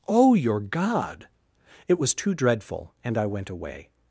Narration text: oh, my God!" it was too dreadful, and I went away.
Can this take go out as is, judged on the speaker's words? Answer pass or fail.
fail